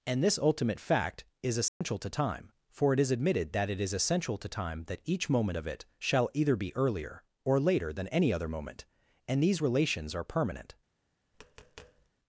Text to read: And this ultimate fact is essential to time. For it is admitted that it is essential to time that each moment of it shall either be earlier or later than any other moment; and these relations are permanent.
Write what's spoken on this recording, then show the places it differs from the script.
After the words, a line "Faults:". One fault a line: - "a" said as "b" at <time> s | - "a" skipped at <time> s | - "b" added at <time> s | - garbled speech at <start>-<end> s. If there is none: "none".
And this ultimate fact is essential to time. For it is admitted that it is essential to time that each moment of it shall either be earlier or later than any other moment; and these relations are permanent.
Faults:
none